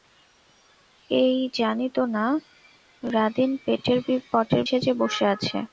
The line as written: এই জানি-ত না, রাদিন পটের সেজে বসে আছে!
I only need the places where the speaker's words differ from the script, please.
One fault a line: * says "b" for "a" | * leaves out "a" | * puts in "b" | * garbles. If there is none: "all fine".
all fine